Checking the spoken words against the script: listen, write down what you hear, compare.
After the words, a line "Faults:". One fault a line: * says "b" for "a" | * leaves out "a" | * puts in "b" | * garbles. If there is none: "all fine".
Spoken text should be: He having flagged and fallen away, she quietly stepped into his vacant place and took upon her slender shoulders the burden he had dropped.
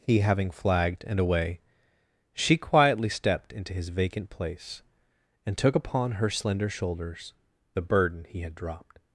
He having flagged and away, she quietly stepped into his vacant place and took upon her slender shoulders the burden he had dropped.
Faults:
* leaves out "fallen"